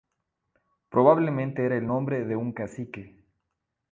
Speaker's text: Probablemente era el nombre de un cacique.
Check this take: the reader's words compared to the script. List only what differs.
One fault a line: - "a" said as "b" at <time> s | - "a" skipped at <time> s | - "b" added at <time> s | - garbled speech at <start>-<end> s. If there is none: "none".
none